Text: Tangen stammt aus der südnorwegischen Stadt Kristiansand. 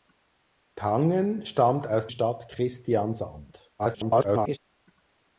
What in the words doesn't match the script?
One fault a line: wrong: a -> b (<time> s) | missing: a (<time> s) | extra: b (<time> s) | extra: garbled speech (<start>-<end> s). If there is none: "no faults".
missing: der südnorwegischen (2.1 s)
extra: garbled speech (3.8-4.6 s)